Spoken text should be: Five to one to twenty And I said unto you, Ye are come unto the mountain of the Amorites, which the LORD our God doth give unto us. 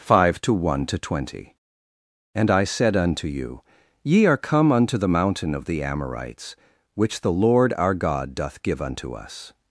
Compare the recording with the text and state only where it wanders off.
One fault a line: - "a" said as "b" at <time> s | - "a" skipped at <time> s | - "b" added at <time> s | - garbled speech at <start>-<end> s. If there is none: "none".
none